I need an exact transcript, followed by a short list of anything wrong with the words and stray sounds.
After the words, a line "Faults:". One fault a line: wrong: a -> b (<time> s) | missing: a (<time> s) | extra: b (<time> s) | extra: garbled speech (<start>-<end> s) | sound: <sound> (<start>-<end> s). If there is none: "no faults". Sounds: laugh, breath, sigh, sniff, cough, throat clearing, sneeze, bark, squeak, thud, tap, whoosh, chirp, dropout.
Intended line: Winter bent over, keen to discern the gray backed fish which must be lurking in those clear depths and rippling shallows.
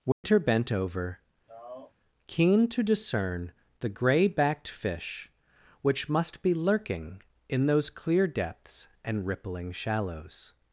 Winter bent over, keen to discern the gray backed fish which must be lurking in those clear depths and rippling shallows.
Faults:
sound: dropout (0.1-0.2 s)
sound: sigh (1.5-1.9 s)